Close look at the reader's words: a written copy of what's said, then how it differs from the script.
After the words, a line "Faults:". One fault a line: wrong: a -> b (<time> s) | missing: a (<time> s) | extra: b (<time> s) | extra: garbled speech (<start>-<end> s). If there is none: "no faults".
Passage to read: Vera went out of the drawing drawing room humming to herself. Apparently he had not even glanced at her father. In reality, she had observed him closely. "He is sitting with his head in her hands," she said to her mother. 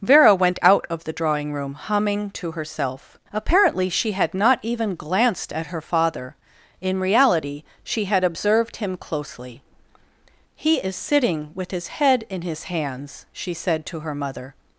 Vera went out of the drawing room humming to herself. Apparently she had not even glanced at her father. In reality, she had observed him closely. "He is sitting with his head in his hands," she said to her mother.
Faults:
missing: drawing (1.5 s)
wrong: he -> she (3.9 s)
wrong: her -> his (12.4 s)